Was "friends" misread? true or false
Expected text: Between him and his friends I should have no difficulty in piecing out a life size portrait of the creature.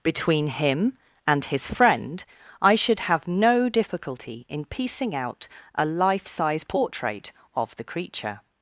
true